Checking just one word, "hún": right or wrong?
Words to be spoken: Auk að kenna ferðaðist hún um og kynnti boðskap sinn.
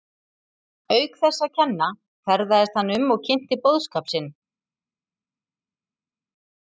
wrong